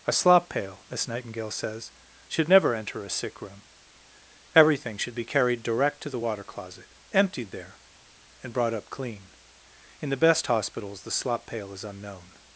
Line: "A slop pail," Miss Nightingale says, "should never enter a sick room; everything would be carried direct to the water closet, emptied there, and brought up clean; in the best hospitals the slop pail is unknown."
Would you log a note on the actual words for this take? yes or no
yes